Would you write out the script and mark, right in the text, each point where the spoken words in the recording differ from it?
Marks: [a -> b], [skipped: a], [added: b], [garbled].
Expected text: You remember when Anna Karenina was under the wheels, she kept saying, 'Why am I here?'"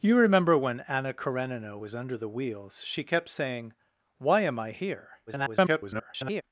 You remember when Anna Karenina was under the wheels, she kept saying, 'Why am I here?'" [garbled]